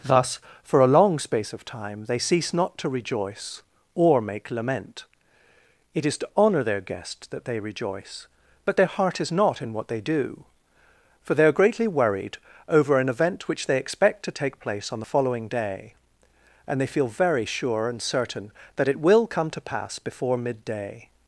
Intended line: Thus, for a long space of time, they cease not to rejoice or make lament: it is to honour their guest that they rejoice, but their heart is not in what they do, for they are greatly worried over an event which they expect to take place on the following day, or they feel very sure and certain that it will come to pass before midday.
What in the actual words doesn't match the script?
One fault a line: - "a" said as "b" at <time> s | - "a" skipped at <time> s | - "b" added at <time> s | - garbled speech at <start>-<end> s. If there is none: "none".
- "or" said as "and" at 16.6 s